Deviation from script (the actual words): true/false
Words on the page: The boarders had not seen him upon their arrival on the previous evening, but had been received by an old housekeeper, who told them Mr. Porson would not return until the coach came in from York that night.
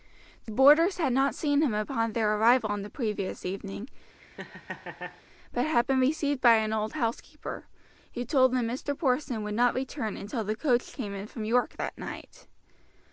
false